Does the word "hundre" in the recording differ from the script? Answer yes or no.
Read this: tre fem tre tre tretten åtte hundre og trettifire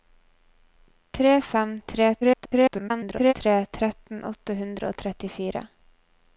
no